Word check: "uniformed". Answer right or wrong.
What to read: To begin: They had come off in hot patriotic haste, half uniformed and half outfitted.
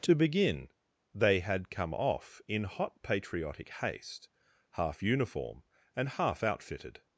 wrong